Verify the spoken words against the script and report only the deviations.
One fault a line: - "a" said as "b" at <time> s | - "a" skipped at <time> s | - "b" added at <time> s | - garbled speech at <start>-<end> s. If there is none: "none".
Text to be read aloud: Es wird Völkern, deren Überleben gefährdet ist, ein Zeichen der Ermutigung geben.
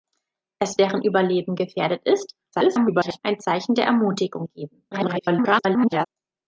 - "wird Völkern" skipped at 0.8 s
- garbled speech at 2.5-3.2 s
- garbled speech at 4.9-6.1 s